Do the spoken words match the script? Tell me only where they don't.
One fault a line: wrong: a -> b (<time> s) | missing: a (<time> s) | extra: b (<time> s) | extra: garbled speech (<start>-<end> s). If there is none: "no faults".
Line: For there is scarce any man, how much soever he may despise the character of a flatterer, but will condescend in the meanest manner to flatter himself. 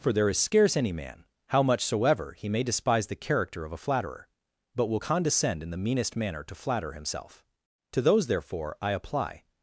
extra: To those therefore I apply (7.9 s)